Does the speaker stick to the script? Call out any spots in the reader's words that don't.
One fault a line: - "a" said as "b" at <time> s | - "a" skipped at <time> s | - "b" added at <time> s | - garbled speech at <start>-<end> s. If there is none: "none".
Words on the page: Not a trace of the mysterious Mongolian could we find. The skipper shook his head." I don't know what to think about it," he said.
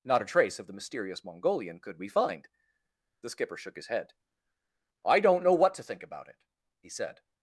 none